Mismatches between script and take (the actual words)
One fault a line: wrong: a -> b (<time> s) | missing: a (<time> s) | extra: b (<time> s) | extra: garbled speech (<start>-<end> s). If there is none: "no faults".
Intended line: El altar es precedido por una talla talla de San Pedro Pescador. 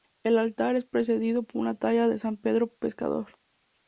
missing: talla (2.1 s)